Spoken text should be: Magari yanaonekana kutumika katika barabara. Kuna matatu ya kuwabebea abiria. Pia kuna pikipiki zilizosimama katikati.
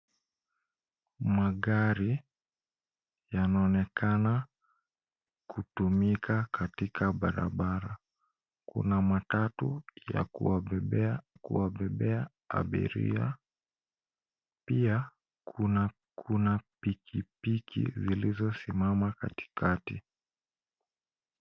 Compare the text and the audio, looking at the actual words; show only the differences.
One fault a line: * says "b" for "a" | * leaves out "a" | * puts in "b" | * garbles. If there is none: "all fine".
* puts in "kuwabebea"
* puts in "kuna"